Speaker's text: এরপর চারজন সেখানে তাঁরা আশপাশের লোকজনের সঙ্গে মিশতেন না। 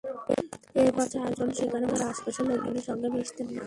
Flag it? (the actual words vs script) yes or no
no